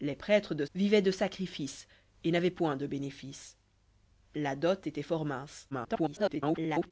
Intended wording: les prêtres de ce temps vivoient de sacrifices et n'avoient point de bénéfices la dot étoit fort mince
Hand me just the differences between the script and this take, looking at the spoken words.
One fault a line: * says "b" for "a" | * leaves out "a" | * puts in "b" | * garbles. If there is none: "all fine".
* leaves out "ce temps"
* garbles